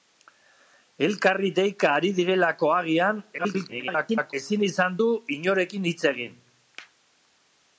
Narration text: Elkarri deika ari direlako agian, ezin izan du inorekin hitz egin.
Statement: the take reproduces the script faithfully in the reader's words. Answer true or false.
false